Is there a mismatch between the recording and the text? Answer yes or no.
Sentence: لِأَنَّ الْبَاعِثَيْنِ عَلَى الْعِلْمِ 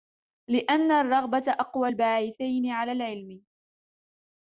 yes